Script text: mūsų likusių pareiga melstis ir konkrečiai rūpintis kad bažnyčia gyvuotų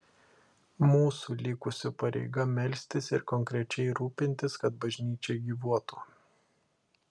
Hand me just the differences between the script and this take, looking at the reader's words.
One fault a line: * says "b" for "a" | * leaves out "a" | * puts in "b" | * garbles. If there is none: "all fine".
all fine